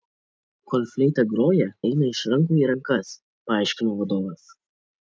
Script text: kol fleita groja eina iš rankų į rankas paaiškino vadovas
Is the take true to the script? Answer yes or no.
yes